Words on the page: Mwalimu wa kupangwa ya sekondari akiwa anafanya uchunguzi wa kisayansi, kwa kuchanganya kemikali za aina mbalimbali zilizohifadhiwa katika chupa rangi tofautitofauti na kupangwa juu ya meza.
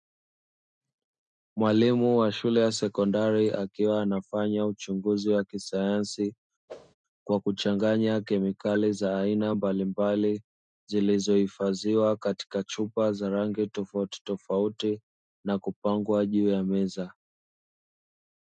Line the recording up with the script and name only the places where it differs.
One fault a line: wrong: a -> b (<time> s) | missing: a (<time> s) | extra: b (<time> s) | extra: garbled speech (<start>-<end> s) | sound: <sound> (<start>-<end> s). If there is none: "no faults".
wrong: kupangwa -> shule (2.3 s)
sound: whoosh (6.7-6.9 s)
extra: za (13.1 s)